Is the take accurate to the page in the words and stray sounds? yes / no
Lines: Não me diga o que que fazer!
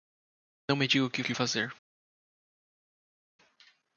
yes